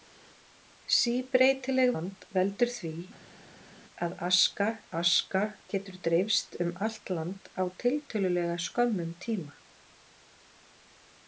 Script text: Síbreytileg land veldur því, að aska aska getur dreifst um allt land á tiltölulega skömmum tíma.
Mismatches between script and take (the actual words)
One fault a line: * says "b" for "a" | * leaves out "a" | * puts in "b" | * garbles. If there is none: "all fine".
all fine